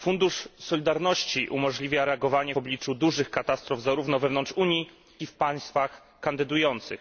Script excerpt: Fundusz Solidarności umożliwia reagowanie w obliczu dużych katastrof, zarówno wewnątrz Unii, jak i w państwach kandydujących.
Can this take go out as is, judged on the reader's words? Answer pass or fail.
fail